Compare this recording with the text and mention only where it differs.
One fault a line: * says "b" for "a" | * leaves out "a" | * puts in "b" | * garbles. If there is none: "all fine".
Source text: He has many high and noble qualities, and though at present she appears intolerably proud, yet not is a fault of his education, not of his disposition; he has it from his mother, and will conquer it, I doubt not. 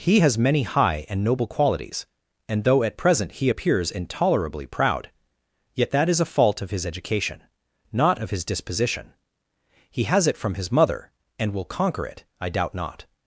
* says "he" for "she"
* says "that" for "not"